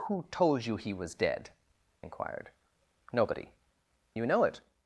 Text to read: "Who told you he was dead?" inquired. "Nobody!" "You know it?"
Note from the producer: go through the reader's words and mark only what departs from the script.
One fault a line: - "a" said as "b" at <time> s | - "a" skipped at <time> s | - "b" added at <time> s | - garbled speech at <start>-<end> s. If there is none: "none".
none